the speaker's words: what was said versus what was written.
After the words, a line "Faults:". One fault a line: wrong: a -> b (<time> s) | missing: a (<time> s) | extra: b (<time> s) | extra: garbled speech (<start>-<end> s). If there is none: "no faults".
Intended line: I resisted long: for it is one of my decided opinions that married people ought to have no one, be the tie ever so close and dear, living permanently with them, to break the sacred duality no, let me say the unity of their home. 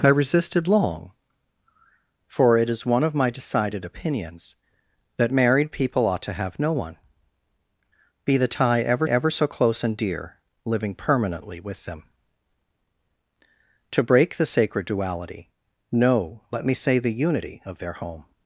I resisted long: for it is one of my decided opinions that married people ought to have no one, be the tie ever ever so close and dear, living permanently with them, to break the sacred duality no, let me say the unity of their home.
Faults:
extra: ever (9.0 s)